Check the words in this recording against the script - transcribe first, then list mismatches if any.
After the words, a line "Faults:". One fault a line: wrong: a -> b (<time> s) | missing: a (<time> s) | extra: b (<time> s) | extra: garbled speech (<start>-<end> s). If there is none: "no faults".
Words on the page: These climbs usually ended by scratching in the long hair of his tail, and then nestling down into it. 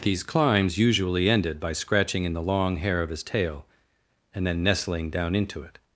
These climbs usually ended by scratching in the long hair of his tail, and then nestling down into it.
Faults:
no faults